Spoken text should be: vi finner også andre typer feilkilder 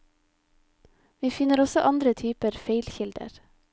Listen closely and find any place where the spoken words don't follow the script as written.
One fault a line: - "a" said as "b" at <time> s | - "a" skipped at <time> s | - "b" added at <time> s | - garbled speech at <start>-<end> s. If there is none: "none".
none